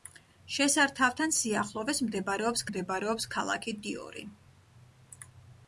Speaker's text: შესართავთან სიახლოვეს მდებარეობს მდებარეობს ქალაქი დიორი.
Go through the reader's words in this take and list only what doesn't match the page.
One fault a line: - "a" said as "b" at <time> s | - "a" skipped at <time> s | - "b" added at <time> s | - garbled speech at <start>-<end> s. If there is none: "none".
none